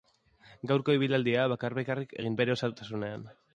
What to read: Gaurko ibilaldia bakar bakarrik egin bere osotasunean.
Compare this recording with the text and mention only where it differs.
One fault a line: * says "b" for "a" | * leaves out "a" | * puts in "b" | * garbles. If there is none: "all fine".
all fine